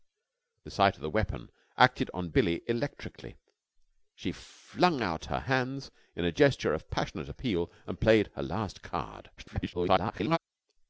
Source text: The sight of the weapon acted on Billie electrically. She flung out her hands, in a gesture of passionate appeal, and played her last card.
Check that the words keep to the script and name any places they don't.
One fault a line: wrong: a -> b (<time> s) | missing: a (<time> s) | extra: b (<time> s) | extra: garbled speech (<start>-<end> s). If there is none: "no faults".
extra: garbled speech (9.4-10.4 s)